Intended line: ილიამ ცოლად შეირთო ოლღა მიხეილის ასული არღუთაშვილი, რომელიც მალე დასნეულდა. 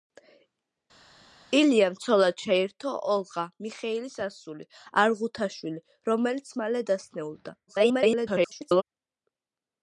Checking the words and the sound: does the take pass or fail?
fail